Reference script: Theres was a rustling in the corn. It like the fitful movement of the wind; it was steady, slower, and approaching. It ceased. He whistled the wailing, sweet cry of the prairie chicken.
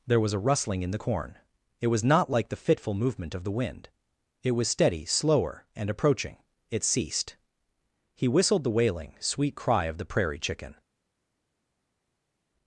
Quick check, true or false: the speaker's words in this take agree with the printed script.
false